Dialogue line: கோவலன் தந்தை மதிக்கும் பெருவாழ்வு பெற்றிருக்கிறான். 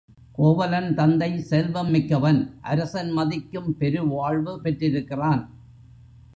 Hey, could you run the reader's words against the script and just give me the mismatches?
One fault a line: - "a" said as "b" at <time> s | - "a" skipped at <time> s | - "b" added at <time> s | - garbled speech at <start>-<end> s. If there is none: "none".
- "செல்வம் மிக்கவன் அரசன்" added at 1.4 s